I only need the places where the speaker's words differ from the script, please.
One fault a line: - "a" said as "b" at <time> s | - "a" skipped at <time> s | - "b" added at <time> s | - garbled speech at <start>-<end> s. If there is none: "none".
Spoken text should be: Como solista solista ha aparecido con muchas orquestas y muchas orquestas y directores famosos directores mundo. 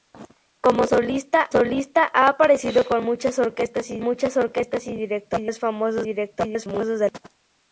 none